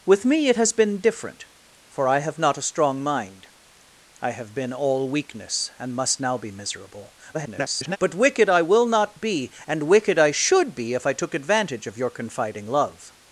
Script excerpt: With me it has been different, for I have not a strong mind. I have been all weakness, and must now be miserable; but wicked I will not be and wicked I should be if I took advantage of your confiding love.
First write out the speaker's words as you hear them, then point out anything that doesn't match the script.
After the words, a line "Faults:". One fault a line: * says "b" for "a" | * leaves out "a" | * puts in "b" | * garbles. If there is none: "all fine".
With me it has been different, for I have not a strong mind. I have been all weakness, and must now be miserable; [garbled] but wicked I will not be and wicked I should be if I took advantage of your confiding love.
Faults:
* garbles